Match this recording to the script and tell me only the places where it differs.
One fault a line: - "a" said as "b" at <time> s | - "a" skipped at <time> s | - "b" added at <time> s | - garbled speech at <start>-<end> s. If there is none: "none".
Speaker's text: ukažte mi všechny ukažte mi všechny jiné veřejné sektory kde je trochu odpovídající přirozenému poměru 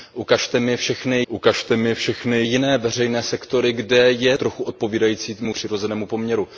none